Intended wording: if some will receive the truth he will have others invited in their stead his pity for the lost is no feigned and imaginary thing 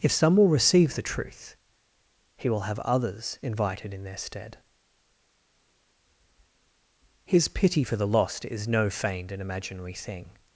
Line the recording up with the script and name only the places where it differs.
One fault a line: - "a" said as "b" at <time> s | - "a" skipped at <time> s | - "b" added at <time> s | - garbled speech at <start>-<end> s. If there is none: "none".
none